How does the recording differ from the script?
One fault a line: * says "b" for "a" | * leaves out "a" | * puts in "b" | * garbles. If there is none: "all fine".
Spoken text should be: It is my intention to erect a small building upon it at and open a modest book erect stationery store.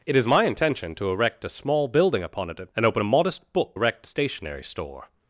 all fine